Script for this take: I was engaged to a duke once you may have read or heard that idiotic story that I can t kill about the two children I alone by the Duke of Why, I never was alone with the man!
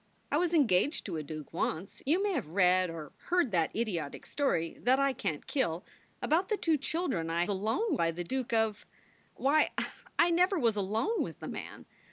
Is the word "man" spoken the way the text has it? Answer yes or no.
yes